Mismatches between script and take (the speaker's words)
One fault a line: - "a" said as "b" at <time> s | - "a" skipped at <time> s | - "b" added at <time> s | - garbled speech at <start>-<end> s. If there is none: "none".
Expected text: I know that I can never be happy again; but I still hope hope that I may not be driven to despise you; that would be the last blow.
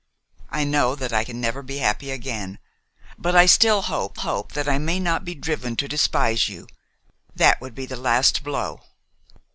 none